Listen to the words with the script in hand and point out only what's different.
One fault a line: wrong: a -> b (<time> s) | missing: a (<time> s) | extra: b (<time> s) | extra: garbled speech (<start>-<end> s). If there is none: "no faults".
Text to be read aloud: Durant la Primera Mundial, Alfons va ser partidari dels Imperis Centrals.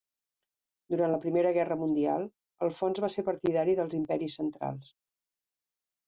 extra: Guerra (1.6 s)